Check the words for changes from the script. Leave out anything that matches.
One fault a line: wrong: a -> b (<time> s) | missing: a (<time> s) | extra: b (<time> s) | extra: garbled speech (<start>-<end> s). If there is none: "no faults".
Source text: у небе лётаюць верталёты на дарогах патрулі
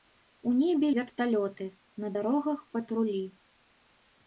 missing: лётаюць (0.9 s)